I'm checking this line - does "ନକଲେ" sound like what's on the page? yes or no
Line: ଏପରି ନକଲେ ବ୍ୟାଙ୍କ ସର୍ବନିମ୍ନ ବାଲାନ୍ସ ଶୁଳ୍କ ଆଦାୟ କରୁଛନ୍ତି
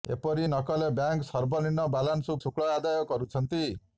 yes